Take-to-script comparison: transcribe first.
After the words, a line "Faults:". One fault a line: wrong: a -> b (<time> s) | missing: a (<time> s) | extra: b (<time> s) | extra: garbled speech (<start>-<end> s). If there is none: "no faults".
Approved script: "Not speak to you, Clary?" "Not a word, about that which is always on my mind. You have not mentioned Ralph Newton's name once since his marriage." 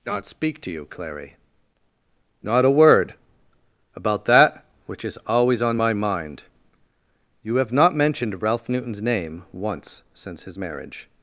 "Not speak to you, Clary?" "Not a word, about that which is always on my mind. You have not mentioned Ralph Newton's name once since his marriage."
Faults:
no faults